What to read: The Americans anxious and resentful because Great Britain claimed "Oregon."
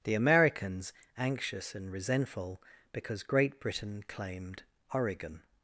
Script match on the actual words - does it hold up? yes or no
yes